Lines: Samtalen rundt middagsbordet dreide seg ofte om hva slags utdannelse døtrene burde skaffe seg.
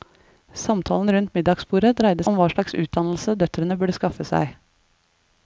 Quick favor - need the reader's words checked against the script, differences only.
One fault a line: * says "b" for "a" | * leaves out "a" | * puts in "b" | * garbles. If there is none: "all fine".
* leaves out "seg ofte"